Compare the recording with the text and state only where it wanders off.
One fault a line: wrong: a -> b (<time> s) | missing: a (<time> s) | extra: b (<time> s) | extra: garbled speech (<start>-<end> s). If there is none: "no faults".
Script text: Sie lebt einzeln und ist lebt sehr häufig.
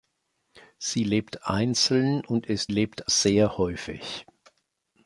no faults